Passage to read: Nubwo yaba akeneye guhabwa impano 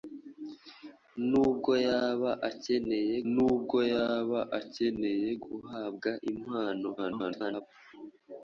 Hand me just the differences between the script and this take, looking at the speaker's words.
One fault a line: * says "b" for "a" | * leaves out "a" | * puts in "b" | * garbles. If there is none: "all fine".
* puts in "nubwo yaba akeneye"
* garbles